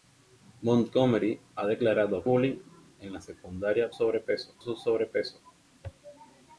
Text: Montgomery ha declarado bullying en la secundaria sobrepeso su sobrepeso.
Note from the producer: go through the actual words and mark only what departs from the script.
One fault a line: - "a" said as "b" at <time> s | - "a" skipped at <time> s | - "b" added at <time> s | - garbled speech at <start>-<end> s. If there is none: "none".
none